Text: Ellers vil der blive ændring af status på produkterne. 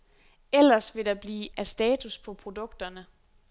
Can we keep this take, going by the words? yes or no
no